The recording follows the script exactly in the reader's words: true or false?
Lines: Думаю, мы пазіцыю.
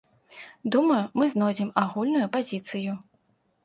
false